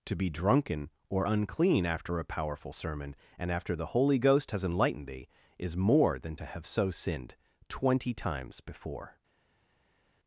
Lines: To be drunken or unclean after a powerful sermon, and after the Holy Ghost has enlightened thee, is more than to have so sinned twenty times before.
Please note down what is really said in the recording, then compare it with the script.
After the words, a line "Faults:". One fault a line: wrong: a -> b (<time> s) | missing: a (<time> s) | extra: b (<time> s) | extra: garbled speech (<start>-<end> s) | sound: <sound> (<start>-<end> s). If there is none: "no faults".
To be drunken or unclean after a powerful sermon, and after the Holy Ghost has enlightened thee, is more than to have so sinned twenty times before.
Faults:
no faults